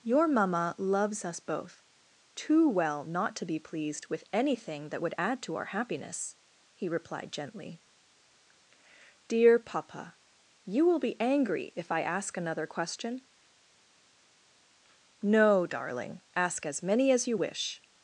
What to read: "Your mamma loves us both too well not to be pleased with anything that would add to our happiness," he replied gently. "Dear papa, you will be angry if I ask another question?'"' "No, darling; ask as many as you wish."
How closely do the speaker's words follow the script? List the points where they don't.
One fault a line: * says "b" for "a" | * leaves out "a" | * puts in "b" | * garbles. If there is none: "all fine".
all fine